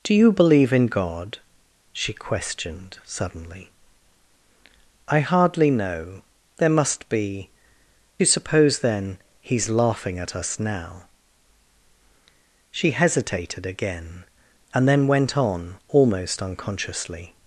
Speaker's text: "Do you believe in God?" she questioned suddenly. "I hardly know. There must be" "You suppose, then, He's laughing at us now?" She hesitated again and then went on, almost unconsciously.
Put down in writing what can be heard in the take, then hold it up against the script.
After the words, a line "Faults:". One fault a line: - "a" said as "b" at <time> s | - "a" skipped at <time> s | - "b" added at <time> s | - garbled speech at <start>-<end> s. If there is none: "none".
"Do you believe in God?" she questioned suddenly. "I hardly know. There must be" "You suppose, then, He's laughing at us now?" She hesitated again and then went on, almost unconsciously.
Faults:
none